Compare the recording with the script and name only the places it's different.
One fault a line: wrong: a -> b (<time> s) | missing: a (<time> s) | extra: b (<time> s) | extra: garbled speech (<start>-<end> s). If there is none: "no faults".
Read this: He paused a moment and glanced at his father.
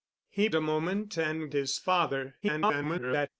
missing: paused (0.5 s)
missing: glanced at (1.5 s)
extra: garbled speech (2.4-3.3 s)